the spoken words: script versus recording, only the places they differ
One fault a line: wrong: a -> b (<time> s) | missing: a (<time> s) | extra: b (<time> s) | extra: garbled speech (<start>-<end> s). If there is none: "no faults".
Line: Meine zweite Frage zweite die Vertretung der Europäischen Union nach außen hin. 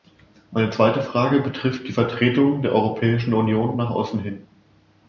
wrong: zweite -> betrifft (1.4 s)